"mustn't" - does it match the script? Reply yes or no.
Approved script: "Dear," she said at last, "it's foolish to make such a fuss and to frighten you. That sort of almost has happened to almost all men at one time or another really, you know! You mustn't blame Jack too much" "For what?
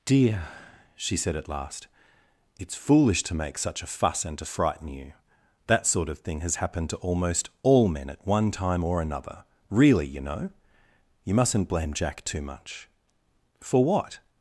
yes